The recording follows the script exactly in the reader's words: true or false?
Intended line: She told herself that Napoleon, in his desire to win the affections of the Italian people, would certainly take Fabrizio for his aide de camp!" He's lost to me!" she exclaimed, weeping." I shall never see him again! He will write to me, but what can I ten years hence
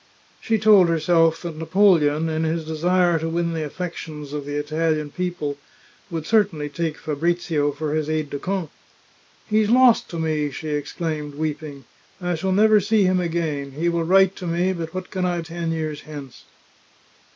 true